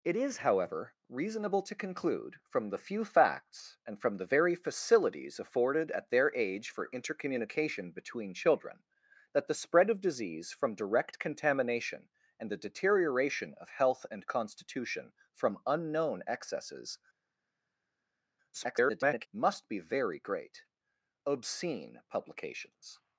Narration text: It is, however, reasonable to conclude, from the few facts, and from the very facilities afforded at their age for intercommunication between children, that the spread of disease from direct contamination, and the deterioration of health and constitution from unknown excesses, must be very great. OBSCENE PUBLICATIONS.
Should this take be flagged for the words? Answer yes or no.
yes